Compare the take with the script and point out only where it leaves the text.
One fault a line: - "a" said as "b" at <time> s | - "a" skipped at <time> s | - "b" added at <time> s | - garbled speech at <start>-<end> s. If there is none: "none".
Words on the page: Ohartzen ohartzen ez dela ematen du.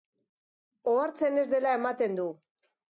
- "ohartzen" skipped at 1.4 s